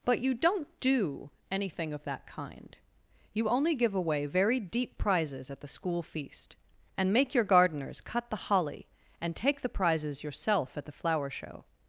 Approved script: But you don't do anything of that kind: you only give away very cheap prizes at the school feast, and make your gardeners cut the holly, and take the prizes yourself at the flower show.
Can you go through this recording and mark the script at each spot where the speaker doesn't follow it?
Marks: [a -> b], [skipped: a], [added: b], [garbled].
But you don't do anything of that kind: you only give away very [cheap -> deep] prizes at the school feast, and make your gardeners cut the holly, and take the prizes yourself at the flower show.